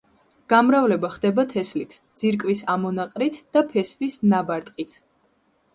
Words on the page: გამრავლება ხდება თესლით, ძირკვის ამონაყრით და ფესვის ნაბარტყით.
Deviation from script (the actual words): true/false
false